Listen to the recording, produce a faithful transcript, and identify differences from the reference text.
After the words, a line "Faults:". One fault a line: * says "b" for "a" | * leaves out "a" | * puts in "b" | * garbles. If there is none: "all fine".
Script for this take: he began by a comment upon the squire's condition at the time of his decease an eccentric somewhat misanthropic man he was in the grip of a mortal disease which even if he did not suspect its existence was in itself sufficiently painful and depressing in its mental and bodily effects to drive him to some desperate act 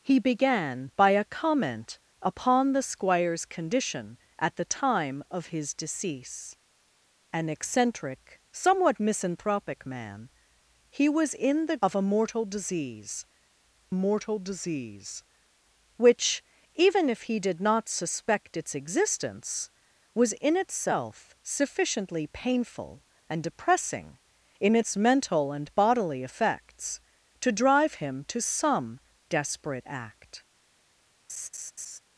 he began by a comment upon the squire's condition at the time of his decease an eccentric somewhat misanthropic man he was in the of a mortal disease mortal disease which even if he did not suspect its existence was in itself sufficiently painful and depressing in its mental and bodily effects to drive him to some desperate act
Faults:
* leaves out "grip"
* puts in "mortal disease"